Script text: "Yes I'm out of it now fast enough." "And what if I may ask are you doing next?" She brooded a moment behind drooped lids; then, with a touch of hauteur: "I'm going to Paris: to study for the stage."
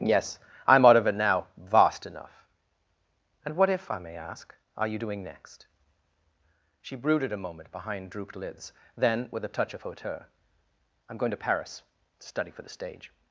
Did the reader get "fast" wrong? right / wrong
wrong